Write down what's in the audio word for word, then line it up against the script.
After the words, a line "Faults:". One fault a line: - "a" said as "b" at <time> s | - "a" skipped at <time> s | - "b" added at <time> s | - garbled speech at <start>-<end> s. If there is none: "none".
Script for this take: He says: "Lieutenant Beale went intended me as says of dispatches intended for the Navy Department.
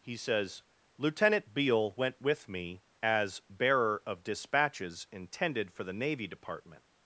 He says: "Lieutenant Beale went with me as bearer of dispatches intended for the Navy Department.
Faults:
- "intended" said as "with" at 2.2 s
- "says" said as "bearer" at 3.5 s